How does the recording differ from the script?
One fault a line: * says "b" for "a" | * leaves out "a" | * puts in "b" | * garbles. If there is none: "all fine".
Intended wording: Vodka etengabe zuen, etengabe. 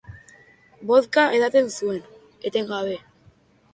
* says "edaten" for "etengabe"